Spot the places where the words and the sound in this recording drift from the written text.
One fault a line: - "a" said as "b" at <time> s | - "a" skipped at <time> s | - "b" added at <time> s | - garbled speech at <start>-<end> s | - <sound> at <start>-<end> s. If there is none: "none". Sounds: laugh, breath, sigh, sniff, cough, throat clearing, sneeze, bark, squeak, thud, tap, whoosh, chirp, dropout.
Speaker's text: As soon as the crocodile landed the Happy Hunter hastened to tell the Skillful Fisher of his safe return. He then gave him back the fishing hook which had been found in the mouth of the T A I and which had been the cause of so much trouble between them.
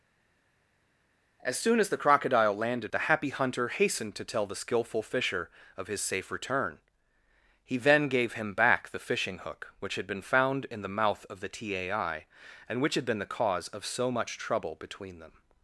none